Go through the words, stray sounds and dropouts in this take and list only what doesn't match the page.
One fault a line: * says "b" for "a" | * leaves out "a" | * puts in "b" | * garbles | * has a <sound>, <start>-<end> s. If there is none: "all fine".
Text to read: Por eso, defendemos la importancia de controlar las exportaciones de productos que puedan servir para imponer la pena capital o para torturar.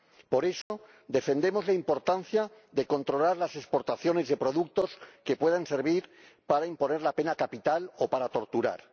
* has a dropout, 0.6-0.7 s